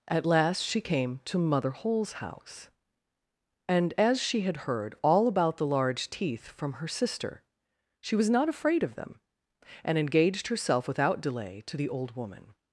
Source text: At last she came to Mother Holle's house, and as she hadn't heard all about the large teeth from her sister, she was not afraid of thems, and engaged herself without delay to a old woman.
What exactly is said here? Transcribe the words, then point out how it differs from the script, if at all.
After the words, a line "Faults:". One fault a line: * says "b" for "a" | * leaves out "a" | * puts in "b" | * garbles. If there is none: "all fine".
At last she came to Mother Holle's house, and as she had heard all about the large teeth from her sister, she was not afraid of them, and engaged herself without delay to the old woman.
Faults:
* says "had" for "hadn't"
* says "them" for "thems"
* says "the" for "a"